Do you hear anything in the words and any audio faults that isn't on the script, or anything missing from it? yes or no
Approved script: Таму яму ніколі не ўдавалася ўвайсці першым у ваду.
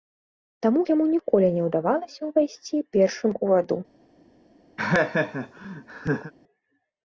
yes